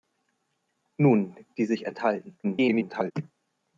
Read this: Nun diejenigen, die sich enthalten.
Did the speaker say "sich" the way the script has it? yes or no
yes